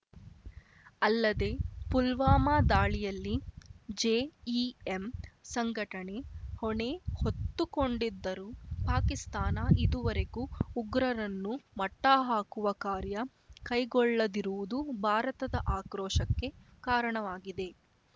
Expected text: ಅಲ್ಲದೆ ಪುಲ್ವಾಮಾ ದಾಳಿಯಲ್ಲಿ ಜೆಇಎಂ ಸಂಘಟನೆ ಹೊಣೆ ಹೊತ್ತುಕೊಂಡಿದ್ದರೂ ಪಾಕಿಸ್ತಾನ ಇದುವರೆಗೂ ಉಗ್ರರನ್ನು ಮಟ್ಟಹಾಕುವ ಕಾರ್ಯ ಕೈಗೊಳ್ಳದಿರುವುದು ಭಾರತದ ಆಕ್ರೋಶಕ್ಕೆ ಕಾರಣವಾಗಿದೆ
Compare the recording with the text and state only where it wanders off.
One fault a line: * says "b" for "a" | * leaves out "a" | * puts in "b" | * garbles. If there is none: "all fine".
all fine